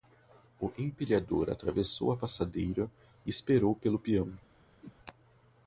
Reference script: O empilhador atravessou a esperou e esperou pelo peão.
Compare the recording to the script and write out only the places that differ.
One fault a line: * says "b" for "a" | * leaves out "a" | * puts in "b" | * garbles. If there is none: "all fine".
* says "passadeira" for "esperou"